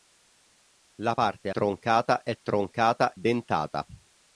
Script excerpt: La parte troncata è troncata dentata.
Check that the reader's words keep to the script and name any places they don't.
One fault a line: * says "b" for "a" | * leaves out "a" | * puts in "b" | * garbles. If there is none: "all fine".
all fine